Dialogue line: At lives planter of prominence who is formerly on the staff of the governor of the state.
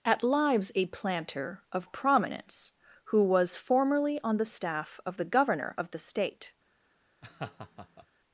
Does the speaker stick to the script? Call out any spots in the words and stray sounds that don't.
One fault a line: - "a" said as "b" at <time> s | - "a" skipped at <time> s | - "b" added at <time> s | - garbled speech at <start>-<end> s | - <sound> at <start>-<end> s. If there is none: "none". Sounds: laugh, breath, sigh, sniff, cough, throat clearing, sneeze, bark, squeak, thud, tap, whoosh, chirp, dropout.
- "a" added at 0.7 s
- "is" said as "was" at 3.2 s
- laugh at 7.2-8.1 s